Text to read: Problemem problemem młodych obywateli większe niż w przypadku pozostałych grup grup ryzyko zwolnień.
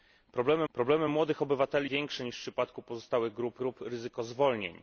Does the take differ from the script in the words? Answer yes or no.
no